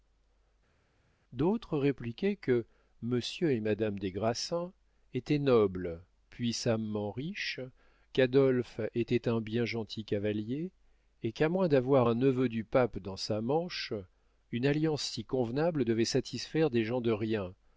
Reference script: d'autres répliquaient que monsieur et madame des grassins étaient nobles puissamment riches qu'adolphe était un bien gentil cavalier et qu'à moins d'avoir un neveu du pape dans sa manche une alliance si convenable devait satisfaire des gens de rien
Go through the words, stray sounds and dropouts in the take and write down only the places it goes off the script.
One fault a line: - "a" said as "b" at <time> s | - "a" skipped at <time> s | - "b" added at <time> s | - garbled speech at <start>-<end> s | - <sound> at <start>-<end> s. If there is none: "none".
none